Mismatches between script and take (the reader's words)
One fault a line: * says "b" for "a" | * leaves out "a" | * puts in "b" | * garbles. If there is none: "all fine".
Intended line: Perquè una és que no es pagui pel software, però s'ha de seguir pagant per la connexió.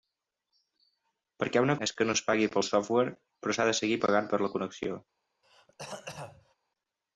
all fine